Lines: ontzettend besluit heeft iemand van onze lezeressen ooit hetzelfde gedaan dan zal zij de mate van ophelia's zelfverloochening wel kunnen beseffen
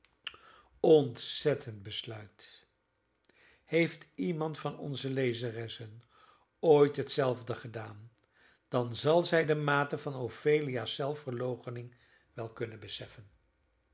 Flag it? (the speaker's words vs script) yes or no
no